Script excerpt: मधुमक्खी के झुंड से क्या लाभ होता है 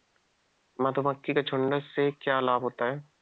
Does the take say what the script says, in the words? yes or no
yes